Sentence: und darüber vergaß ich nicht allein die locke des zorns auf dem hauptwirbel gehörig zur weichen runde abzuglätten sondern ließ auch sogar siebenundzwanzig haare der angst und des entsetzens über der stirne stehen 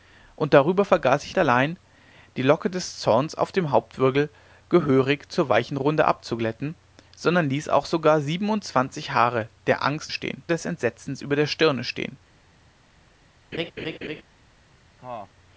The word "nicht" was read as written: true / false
false